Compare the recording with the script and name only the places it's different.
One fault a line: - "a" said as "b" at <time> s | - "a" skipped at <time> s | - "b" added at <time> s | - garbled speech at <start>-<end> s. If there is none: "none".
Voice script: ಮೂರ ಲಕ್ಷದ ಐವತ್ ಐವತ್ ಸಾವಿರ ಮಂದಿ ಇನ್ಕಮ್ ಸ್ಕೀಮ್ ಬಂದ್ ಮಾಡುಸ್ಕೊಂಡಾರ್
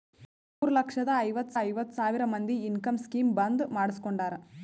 none